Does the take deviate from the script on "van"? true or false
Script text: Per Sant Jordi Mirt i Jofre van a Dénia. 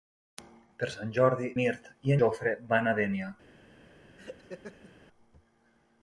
false